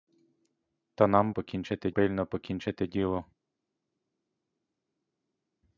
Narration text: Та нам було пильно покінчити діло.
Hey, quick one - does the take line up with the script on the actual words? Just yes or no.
no